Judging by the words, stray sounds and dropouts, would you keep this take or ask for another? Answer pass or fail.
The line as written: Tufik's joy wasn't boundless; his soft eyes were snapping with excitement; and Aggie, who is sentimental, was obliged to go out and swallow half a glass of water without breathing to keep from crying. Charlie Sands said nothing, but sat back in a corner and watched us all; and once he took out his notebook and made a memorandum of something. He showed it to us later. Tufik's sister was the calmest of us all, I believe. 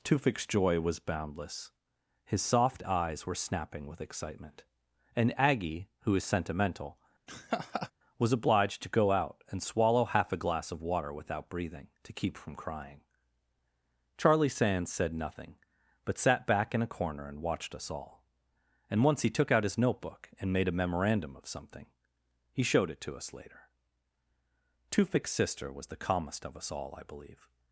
fail